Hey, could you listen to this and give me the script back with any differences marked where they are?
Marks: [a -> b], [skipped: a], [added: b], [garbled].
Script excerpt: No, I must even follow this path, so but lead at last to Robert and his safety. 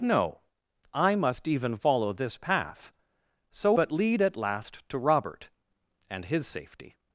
No, I must even follow this path, so but lead at last to Robert and his safety.